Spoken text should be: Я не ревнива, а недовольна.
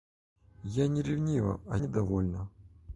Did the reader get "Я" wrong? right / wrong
right